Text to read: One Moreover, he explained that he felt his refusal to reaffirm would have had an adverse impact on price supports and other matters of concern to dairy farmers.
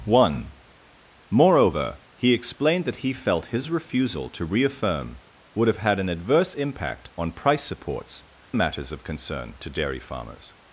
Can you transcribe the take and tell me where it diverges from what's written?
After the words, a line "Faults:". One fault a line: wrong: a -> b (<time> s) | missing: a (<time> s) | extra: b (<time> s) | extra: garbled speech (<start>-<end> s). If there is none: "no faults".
One Moreover, he explained that he felt his refusal to reaffirm would have had an adverse impact on price supports matters of concern to dairy farmers.
Faults:
missing: and other (8.2 s)